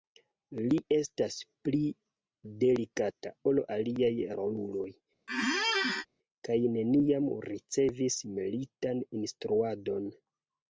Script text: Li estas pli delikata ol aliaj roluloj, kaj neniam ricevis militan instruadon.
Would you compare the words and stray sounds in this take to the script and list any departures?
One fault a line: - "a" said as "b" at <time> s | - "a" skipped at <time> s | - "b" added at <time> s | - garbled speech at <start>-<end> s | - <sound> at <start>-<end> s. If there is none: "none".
- squeak at 5.3-6.1 s